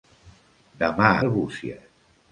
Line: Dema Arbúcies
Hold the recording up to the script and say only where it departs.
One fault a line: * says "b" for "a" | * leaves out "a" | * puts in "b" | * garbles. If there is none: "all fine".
all fine